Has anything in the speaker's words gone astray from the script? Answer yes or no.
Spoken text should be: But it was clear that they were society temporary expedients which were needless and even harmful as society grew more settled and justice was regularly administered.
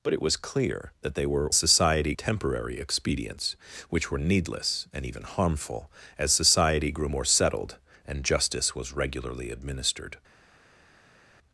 no